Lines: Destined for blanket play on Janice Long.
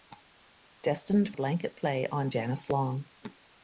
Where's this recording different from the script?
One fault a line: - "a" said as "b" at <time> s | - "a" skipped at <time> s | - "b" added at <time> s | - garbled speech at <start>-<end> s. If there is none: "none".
- "for" skipped at 1.3 s